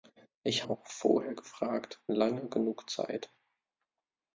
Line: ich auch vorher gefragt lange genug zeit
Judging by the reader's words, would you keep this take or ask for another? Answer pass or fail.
pass